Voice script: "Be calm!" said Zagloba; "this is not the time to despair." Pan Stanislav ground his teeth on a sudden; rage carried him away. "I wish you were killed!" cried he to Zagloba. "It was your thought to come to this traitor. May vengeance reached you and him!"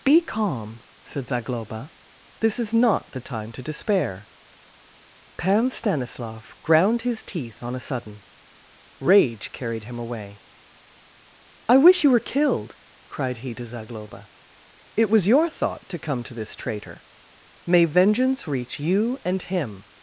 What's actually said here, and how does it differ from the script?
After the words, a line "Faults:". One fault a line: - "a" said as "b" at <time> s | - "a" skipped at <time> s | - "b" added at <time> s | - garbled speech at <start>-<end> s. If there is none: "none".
"Be calm!" said Zagloba; "this is not the time to despair." Pan Stanislav ground his teeth on a sudden; rage carried him away. "I wish you were killed!" cried he to Zagloba. "It was your thought to come to this traitor. May vengeance reach you and him!"
Faults:
- "reached" said as "reach" at 18.5 s